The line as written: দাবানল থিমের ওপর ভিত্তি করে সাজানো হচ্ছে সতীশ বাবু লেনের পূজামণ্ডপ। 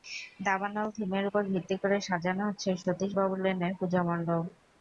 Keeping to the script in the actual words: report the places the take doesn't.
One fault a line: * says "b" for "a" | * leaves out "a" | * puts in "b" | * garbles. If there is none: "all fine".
all fine